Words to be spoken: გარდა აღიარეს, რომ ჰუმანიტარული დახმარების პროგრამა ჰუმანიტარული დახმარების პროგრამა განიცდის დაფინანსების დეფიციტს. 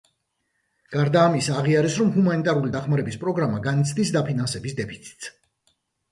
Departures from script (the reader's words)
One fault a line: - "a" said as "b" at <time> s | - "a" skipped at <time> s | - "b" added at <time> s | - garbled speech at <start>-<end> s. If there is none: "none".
- "ამისა" added at 1.3 s
- "ჰუმანიტარული დახმარების პროგრამა" skipped at 3.6 s